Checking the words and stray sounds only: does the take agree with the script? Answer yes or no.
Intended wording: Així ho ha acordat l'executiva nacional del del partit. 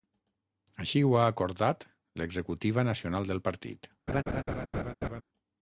no